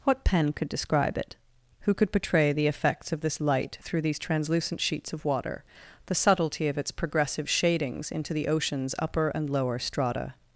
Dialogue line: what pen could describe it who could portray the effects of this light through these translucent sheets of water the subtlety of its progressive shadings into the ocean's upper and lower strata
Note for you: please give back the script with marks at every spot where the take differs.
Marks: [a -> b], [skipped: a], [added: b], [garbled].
what pen could describe it who could portray the effects of this light through these translucent sheets of water the subtlety of its progressive shadings into the ocean's upper and lower strata